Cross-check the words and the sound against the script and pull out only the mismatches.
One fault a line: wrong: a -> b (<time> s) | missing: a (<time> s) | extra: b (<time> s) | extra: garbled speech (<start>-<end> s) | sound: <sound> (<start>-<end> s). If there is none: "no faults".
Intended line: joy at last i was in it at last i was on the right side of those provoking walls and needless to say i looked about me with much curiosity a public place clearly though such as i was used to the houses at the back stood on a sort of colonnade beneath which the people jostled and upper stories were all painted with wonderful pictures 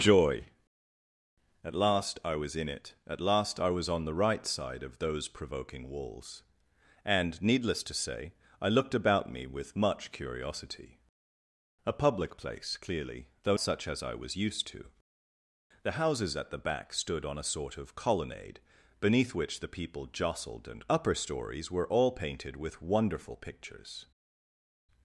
no faults